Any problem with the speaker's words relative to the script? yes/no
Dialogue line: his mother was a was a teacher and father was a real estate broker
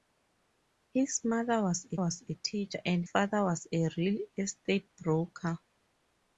no